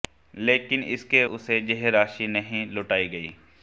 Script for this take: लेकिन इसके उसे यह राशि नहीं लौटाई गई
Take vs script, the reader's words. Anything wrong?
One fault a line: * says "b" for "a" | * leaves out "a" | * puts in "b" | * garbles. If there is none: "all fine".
all fine